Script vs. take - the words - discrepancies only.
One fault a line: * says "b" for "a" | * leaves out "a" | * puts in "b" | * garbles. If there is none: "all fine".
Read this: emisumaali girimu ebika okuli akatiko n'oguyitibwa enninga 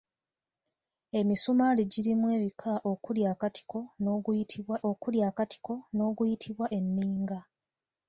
* puts in "okuli akatiko n'oguyitibwa"